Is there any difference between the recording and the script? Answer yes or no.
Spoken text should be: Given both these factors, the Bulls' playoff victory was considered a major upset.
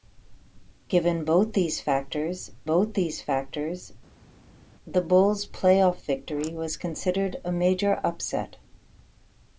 yes